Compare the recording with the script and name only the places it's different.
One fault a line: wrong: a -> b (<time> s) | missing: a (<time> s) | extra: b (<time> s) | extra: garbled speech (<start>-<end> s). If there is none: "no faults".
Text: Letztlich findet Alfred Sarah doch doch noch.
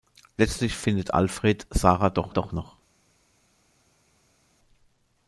no faults